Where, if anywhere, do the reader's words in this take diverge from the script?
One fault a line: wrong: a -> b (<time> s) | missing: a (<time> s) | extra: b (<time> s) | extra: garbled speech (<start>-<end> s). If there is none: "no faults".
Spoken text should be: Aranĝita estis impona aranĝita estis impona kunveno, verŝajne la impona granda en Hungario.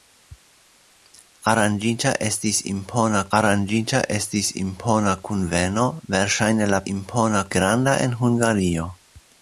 no faults